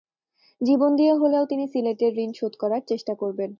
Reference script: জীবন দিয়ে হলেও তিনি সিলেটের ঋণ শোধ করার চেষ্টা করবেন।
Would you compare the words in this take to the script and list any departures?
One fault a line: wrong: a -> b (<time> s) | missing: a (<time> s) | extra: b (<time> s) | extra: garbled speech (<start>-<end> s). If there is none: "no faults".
no faults